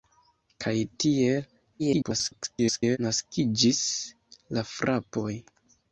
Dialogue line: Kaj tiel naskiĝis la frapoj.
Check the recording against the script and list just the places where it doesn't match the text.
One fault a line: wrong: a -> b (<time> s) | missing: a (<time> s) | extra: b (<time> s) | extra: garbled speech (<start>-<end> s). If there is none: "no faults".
extra: garbled speech (1.8-3.0 s)